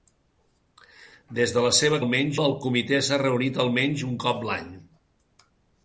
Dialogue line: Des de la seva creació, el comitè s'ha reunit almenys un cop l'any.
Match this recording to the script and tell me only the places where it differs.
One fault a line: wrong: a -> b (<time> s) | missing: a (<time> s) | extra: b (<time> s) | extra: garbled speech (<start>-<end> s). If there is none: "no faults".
wrong: creació -> almenys (2.0 s)